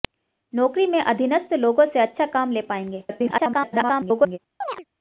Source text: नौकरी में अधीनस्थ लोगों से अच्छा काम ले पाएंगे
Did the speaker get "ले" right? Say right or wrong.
right